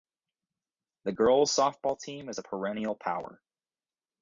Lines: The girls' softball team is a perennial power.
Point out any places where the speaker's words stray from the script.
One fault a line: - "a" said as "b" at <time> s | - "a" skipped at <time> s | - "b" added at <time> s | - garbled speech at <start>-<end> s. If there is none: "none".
none